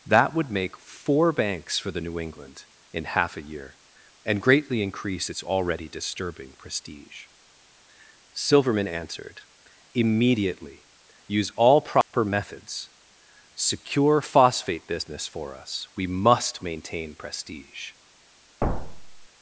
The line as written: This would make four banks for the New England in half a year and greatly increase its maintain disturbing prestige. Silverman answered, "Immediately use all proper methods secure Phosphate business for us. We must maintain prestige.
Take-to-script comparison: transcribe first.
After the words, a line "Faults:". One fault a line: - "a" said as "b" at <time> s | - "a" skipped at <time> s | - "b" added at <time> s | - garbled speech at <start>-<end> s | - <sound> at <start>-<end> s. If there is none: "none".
That would make four banks for the New England in half a year and greatly increase its already disturbing prestige. Silverman answered, "Immediately use all proper methods secure Phosphate business for us. We must maintain prestige.
Faults:
- "This" said as "That" at 0.1 s
- "maintain" said as "already" at 5.4 s
- dropout at 12.0-12.1 s
- thud at 18.6-19.3 s